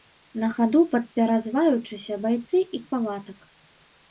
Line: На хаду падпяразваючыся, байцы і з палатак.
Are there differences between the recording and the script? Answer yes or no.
no